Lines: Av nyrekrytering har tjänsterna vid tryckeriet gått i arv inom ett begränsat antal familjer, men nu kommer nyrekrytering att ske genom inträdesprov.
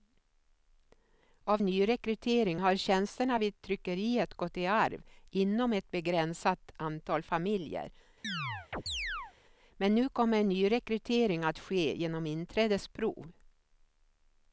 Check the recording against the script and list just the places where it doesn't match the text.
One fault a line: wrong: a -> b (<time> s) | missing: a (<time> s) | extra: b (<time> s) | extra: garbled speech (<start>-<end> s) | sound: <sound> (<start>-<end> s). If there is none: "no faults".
sound: chirp (8.2-9.3 s)